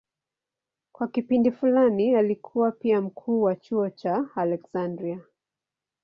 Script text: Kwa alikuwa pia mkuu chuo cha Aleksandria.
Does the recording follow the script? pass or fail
fail